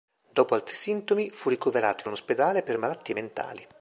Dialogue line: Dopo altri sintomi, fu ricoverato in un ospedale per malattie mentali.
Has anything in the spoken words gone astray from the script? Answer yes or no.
no